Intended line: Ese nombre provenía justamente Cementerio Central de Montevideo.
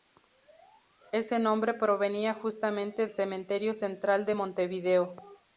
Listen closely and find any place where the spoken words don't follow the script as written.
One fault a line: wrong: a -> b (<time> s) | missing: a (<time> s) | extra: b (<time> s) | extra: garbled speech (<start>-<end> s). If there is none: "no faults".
no faults